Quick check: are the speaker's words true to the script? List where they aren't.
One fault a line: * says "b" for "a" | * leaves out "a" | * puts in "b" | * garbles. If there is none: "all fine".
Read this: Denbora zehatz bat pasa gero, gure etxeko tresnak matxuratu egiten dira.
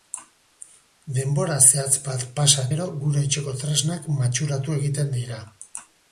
all fine